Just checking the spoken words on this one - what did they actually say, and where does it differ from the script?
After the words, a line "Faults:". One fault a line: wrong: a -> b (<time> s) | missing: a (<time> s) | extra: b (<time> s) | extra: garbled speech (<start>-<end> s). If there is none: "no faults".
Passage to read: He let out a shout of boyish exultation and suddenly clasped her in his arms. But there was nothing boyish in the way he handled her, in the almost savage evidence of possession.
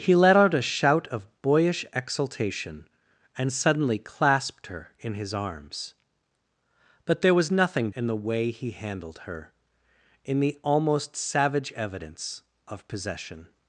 He let out a shout of boyish exultation and suddenly clasped her in his arms. But there was nothing in the way he handled her, in the almost savage evidence of possession.
Faults:
missing: boyish (7.9 s)